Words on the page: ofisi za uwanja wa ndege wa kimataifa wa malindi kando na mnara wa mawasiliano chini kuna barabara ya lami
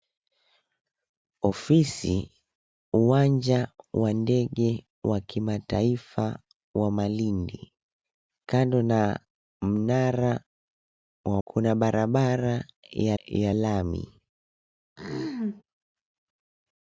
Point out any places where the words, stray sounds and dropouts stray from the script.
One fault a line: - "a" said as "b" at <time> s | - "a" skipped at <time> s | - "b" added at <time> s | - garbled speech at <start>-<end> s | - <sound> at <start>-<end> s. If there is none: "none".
- "za" skipped at 2.3 s
- "mawasiliano chini" skipped at 11.4 s
- "ya" added at 13.2 s
- throat clearing at 15.0-15.6 s